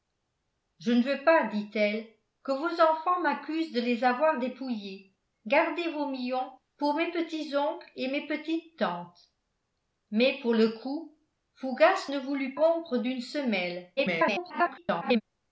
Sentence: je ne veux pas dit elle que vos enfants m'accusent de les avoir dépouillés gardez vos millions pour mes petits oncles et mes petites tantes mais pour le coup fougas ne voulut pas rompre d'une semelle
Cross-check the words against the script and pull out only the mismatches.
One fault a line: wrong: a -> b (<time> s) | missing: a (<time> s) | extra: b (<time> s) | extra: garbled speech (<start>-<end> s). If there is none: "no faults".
missing: pas (12.5 s)
extra: garbled speech (14.0-15.2 s)